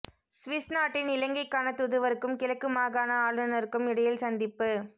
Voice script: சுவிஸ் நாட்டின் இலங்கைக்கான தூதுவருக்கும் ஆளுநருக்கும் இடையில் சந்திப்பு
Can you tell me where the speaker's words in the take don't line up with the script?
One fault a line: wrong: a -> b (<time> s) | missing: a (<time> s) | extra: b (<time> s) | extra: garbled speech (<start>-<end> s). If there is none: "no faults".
extra: கிழக்கு மாகாண (2.4 s)